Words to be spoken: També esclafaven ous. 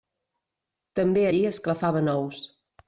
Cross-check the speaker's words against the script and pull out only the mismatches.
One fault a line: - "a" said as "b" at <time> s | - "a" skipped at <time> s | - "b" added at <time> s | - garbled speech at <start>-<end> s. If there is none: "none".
- "allí" added at 1.3 s